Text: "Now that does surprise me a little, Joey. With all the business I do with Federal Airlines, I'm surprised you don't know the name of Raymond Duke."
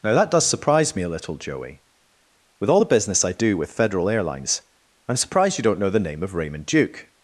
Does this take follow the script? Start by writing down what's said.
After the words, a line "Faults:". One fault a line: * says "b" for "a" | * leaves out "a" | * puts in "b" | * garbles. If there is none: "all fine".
"Now that does surprise me a little, Joey. With all the business I do with Federal Airlines, I'm surprised you don't know the name of Raymond Duke."
Faults:
all fine